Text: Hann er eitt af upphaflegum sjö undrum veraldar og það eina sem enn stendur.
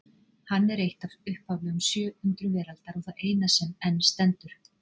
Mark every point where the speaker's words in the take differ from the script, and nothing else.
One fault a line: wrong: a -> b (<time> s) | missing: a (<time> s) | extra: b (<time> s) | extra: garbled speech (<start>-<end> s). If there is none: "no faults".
no faults